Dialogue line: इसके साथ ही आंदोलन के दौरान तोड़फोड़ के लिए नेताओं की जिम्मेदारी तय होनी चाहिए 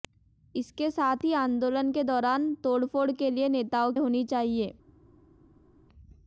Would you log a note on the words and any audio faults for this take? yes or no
yes